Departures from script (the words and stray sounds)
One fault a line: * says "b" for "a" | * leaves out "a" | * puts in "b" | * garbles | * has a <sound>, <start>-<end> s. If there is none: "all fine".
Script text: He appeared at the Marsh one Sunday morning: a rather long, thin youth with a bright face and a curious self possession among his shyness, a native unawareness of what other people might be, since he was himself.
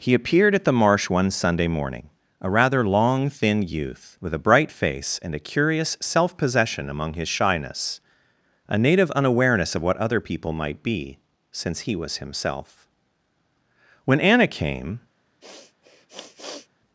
* puts in "When Anna came"
* has a sniff, 15.4-16.7 s